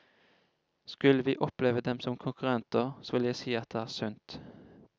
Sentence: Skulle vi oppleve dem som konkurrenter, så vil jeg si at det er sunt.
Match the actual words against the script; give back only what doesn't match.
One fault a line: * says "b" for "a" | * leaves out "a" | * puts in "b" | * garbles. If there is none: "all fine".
all fine